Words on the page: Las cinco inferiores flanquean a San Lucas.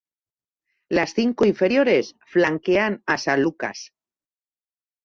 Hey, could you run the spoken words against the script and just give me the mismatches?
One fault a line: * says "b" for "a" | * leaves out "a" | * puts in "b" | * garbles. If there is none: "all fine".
all fine